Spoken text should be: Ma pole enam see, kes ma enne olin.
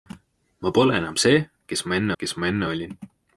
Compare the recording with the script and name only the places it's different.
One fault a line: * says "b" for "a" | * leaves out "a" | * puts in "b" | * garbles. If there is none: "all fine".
* puts in "kes ma enne"